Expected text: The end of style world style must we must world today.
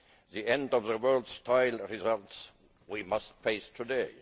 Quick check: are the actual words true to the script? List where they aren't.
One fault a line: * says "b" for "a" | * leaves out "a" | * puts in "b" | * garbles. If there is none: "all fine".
* says "the" for "style"
* says "results" for "must"
* says "face" for "world"